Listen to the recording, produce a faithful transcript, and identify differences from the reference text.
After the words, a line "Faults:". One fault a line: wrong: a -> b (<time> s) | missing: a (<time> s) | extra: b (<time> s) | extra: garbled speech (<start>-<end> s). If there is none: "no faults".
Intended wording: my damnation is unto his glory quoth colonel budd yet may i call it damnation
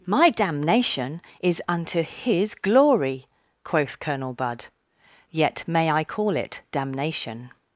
my damnation is unto his glory quoth colonel budd yet may i call it damnation
Faults:
no faults